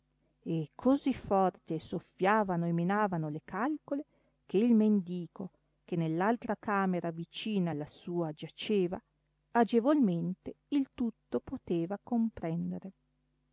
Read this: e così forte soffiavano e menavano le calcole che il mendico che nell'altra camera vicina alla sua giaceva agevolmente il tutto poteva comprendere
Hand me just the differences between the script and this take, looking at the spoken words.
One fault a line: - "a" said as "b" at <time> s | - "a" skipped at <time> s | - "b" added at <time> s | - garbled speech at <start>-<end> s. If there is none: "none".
none